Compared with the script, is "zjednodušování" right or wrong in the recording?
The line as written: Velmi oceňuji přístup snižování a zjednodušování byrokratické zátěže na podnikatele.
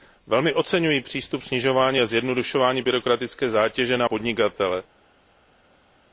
right